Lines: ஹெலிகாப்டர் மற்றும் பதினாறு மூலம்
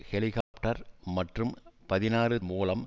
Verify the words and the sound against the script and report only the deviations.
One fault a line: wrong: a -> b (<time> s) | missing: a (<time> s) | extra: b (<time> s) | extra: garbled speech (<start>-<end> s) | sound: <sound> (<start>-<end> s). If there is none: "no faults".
sound: dropout (0.4-0.5 s)